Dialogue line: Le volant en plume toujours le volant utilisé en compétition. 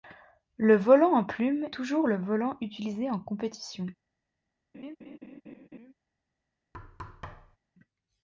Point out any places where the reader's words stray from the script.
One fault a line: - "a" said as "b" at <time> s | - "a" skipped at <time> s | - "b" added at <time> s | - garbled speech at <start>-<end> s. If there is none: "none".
none